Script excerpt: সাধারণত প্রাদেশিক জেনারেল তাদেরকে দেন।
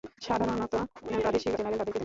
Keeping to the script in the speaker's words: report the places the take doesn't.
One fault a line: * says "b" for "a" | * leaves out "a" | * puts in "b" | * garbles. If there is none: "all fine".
all fine